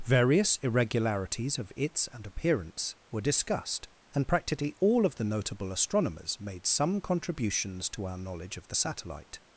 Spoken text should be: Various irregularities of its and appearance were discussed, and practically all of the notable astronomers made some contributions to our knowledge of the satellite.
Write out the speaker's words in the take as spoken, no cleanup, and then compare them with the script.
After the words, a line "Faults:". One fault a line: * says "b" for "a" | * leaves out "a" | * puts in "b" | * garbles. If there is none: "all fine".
Various irregularities of its and appearance were discussed, and practically all of the notable astronomers made some contributions to our knowledge of the satellite.
Faults:
all fine